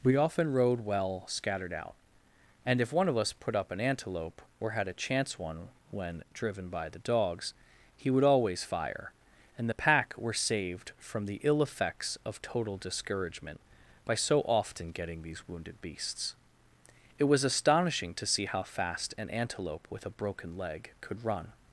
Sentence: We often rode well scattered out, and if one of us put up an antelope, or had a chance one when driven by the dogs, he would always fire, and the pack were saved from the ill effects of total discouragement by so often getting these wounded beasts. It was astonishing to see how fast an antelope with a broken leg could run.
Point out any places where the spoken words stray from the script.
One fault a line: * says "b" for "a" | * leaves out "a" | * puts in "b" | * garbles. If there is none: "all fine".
all fine